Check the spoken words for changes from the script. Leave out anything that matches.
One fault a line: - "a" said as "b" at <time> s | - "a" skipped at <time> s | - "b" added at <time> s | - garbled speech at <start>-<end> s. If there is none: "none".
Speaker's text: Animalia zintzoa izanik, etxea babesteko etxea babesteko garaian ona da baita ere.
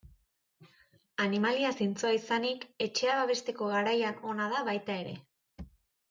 - "etxea babesteko" skipped at 3.7 s